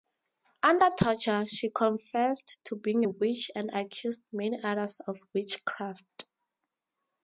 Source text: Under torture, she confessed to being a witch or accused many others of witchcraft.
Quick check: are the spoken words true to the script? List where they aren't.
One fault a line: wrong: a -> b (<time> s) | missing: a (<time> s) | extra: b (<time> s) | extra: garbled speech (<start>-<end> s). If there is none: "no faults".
wrong: or -> and (3.5 s)